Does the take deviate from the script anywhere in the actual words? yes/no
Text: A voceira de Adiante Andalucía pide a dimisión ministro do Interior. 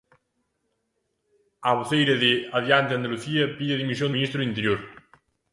no